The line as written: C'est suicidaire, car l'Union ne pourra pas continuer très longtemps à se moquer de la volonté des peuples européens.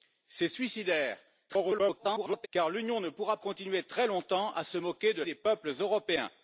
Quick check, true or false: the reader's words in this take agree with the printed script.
false